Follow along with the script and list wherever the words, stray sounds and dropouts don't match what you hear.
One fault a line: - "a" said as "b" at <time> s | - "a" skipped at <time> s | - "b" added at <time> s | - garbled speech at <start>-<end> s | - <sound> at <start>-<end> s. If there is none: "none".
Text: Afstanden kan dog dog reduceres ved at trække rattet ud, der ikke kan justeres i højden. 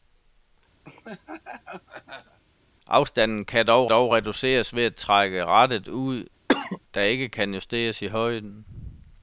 - laugh at 0.8-2.4 s
- cough at 6.5-6.8 s